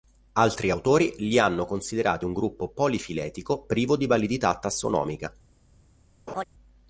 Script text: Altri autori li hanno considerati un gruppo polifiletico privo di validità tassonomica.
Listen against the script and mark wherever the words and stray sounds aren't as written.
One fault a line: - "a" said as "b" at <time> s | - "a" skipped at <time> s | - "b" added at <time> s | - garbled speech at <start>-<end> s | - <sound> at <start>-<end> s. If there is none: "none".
- laugh at 6.3-6.4 s